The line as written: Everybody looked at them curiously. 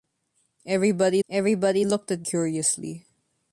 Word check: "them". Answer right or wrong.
wrong